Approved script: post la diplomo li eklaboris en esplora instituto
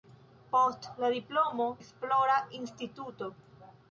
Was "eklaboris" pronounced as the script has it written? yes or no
no